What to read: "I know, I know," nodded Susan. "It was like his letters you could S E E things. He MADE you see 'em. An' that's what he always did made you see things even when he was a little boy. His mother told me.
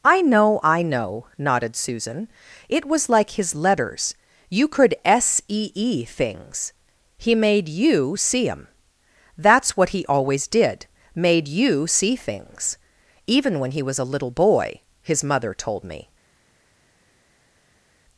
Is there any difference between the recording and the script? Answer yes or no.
yes